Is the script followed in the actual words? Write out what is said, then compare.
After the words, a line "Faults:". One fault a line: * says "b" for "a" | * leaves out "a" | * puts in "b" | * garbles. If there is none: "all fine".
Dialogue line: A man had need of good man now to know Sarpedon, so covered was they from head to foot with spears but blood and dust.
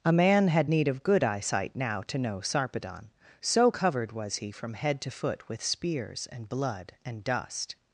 A man had need of good eyesight now to know Sarpedon, so covered was he from head to foot with spears and blood and dust.
Faults:
* says "eyesight" for "man"
* says "he" for "they"
* says "and" for "but"